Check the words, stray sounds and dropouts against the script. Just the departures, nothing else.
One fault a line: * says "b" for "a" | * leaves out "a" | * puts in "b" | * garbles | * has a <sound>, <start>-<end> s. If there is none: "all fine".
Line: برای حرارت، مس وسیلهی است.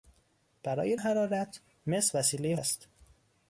all fine